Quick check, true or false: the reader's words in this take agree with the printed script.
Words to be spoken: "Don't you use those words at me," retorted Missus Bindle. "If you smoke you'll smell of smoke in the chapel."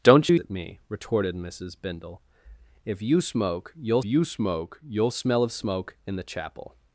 false